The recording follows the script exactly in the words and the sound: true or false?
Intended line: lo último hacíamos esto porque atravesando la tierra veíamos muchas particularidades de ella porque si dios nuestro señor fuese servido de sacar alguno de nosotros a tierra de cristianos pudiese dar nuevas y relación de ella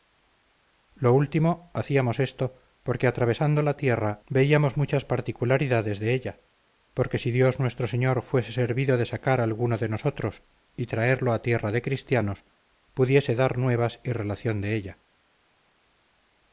false